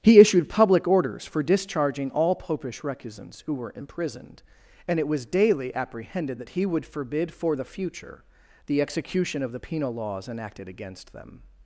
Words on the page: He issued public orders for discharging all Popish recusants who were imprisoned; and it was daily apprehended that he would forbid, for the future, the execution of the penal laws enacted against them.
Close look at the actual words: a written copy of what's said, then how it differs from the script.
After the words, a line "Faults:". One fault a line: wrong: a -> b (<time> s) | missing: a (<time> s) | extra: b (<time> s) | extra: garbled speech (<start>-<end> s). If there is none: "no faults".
He issued public orders for discharging all Popish recusants who were imprisoned; and it was daily apprehended that he would forbid, for the future, the execution of the penal laws enacted against them.
Faults:
no faults